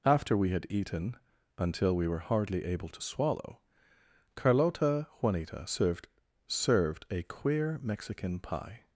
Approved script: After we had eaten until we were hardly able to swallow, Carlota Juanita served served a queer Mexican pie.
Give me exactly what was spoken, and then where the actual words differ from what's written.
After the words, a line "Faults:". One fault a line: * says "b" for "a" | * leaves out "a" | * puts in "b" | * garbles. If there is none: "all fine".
After we had eaten until we were hardly able to swallow, Carlota Juanita served served a queer Mexican pie.
Faults:
all fine